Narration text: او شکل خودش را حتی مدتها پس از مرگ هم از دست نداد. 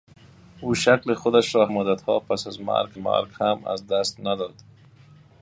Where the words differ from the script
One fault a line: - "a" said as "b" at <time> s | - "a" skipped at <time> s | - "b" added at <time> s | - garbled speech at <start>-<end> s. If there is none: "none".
- "حتی" skipped at 1.7 s
- "مرگ" added at 3.0 s